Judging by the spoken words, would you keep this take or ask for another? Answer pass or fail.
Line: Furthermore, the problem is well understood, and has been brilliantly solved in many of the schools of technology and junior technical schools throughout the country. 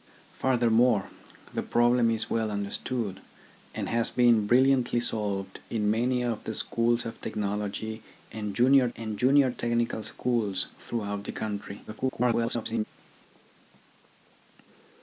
fail